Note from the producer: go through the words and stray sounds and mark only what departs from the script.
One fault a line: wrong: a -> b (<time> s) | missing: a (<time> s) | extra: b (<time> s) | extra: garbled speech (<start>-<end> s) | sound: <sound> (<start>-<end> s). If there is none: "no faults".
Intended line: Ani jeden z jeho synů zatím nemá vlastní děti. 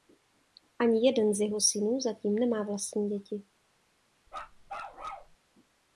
sound: bark (4.3-5.4 s)